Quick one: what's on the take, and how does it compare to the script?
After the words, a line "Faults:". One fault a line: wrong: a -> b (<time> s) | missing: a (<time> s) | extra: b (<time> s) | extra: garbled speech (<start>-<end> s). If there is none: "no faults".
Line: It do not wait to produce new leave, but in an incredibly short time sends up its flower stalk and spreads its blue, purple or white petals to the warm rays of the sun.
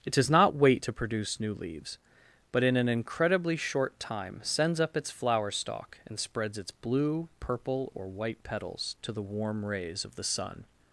It does not wait to produce new leaves, but in an incredibly short time sends up its flower stalk and spreads its blue, purple or white petals to the warm rays of the sun.
Faults:
wrong: do -> does (0.1 s)
wrong: leave -> leaves (1.5 s)